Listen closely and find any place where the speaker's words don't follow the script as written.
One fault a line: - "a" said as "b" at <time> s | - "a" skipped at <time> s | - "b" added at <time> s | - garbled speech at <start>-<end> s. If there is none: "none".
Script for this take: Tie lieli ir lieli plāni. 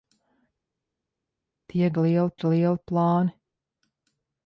none